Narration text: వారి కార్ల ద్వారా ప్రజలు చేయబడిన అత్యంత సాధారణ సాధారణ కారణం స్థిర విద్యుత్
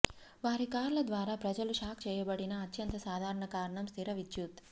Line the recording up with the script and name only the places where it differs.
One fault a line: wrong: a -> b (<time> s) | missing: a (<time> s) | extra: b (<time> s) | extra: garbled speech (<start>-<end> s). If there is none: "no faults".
extra: షాక్ (1.8 s)
missing: సాధారణ (3.5 s)